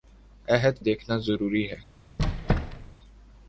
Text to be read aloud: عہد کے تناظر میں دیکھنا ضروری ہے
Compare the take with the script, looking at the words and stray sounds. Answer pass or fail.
fail